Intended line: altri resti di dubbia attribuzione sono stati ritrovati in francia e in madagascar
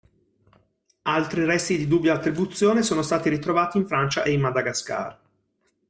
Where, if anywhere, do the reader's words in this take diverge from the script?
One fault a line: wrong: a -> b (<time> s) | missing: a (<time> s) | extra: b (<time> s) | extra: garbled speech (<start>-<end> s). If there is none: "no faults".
no faults